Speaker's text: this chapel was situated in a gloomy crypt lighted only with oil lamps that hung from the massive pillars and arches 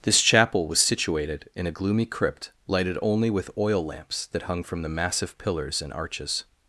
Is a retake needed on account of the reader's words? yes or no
no